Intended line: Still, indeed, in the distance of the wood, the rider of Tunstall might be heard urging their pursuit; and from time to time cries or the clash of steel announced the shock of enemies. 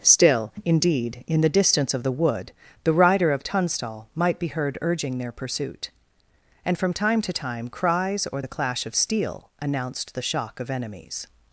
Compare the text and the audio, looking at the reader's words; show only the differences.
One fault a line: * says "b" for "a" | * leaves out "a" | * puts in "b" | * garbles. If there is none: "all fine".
all fine